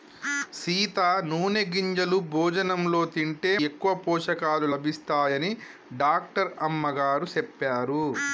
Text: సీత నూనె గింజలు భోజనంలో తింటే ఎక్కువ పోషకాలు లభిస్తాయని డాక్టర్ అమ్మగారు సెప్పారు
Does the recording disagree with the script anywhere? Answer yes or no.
no